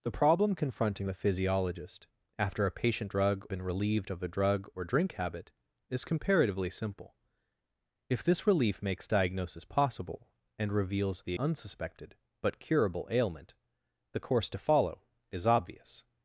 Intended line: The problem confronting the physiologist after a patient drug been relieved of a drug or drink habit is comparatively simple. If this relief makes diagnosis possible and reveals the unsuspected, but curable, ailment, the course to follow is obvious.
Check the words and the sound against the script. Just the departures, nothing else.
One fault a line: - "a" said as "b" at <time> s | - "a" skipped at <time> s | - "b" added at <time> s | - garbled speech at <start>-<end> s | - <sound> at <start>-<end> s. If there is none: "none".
none